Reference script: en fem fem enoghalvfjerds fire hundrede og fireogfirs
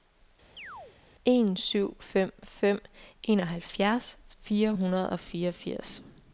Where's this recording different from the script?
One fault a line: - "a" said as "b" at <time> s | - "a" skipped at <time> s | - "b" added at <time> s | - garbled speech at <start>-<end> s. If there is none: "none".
- "syv" added at 1.6 s